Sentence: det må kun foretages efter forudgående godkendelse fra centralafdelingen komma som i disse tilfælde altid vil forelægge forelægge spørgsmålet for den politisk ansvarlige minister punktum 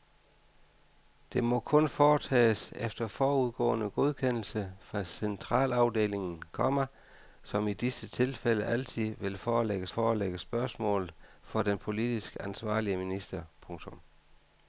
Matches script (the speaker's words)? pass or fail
pass